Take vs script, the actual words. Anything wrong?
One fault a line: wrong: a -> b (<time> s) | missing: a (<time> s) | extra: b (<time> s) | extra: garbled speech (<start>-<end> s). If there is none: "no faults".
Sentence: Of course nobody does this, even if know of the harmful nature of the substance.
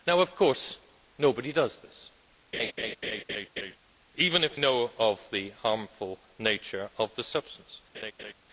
no faults